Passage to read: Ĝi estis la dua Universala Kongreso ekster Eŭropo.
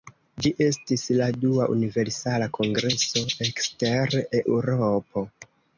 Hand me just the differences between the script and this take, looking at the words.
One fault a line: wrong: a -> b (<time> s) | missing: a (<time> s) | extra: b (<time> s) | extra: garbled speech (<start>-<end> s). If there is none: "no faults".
no faults